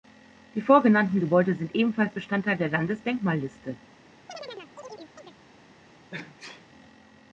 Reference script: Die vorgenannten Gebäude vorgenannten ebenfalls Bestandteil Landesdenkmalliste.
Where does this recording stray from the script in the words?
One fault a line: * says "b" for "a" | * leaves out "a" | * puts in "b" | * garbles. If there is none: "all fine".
* says "sind" for "vorgenannten"
* puts in "der"